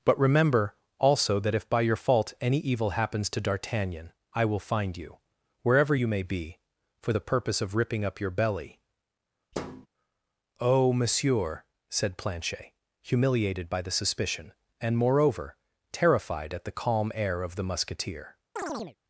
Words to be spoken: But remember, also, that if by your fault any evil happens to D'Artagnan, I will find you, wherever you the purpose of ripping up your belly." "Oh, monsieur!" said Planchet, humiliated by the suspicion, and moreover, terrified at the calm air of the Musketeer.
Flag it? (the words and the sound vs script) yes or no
yes